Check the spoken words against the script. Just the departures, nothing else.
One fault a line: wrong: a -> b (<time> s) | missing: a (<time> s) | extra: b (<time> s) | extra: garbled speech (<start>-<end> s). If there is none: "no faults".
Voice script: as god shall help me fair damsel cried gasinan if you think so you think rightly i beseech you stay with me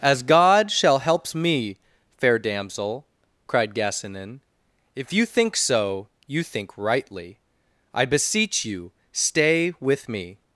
wrong: help -> helps (1.0 s)